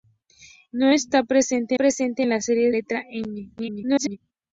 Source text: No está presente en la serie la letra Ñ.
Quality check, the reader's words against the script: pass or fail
fail